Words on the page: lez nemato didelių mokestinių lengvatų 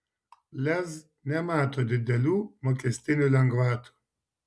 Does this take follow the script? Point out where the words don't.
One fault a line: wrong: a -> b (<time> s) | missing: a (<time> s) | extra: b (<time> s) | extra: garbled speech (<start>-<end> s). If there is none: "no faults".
no faults